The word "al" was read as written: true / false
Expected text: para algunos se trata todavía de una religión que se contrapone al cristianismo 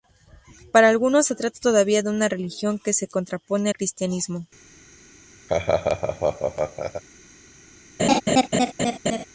false